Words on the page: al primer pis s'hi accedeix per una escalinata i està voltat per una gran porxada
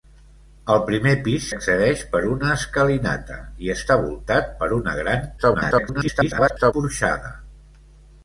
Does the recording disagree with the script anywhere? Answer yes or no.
yes